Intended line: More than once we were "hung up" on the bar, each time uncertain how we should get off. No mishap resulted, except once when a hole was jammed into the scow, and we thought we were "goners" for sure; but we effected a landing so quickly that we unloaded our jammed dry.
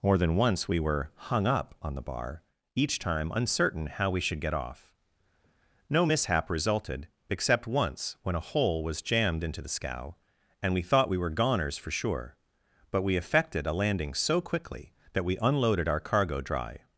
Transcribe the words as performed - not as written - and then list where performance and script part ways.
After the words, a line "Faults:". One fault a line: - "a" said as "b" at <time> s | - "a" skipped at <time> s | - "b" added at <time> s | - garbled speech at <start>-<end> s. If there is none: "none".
More than once we were "hung up" on the bar, each time uncertain how we should get off. No mishap resulted, except once when a hole was jammed into the scow, and we thought we were "goners" for sure; but we effected a landing so quickly that we unloaded our cargo dry.
Faults:
- "jammed" said as "cargo" at 16.0 s